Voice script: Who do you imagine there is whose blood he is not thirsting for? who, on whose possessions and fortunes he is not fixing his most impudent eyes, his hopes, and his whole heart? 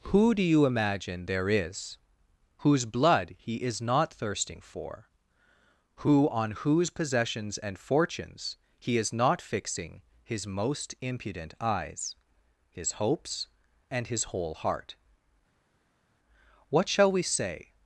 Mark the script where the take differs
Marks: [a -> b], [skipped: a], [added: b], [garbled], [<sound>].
Who do you imagine there is whose blood he is not thirsting for? who, on whose possessions and fortunes he is not fixing his most impudent eyes, his hopes, and his whole heart? [added: What shall we say]